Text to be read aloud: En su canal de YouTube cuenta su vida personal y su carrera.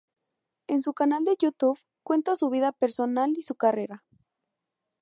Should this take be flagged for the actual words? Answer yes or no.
no